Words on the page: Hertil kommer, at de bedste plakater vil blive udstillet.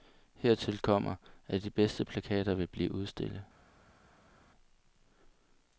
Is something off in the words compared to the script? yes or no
no